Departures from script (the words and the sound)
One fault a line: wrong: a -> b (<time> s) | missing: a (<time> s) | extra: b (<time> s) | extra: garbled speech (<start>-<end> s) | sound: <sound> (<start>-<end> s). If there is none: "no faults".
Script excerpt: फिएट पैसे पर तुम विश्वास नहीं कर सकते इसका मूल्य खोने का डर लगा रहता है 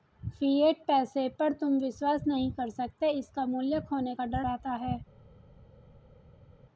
missing: लगा (4.4 s)